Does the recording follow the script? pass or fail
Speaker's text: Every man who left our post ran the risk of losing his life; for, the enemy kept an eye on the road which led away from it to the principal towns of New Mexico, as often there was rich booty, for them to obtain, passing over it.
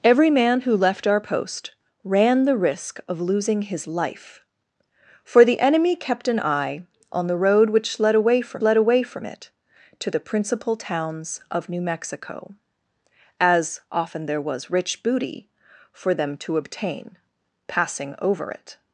fail